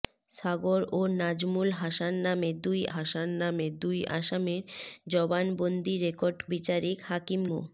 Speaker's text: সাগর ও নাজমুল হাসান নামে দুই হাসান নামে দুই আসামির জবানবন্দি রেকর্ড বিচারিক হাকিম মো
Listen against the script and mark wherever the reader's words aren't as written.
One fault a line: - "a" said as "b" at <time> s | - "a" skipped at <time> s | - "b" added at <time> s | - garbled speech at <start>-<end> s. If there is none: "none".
none